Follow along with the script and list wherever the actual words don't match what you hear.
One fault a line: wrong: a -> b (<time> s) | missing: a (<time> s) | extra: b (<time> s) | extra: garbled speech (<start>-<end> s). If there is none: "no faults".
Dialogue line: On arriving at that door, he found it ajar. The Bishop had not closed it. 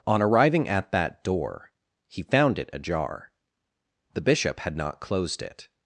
no faults